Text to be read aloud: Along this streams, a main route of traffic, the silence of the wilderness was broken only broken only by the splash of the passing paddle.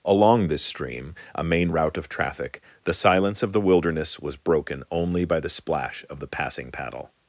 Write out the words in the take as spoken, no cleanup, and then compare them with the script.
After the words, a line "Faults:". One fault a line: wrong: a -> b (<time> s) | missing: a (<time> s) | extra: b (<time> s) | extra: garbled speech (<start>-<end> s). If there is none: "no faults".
Along this stream, a main route of traffic, the silence of the wilderness was broken only by the splash of the passing paddle.
Faults:
wrong: streams -> stream (0.7 s)
missing: broken only (5.3 s)